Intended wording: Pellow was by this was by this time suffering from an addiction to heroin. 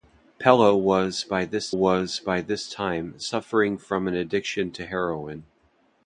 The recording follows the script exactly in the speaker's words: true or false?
true